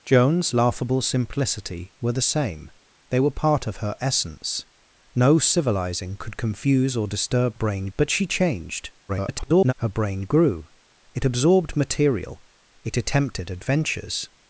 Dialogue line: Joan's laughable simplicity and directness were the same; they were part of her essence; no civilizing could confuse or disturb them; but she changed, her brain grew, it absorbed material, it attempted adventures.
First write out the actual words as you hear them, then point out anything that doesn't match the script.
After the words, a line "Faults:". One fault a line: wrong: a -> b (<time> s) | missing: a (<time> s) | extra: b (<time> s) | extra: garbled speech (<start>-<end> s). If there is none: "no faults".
Joan's laughable simplicity were the same; they were part of her essence; no civilizing could confuse or disturb brain; but she changed, [garbled] her brain grew, it absorbed material, it attempted adventures.
Faults:
missing: and directness (1.9 s)
wrong: them -> brain (7.5 s)
extra: garbled speech (9.1-9.7 s)